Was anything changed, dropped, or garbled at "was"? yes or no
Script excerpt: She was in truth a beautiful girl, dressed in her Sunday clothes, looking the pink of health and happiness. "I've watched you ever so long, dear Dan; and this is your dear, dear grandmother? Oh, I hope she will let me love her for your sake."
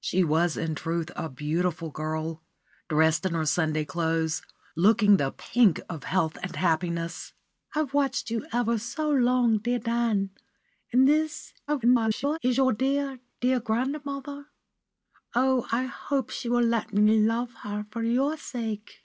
no